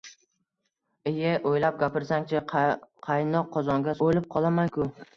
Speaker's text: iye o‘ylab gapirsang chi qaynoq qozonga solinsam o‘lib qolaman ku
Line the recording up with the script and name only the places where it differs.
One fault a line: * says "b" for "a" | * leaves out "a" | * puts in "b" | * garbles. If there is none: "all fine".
* leaves out "solinsam"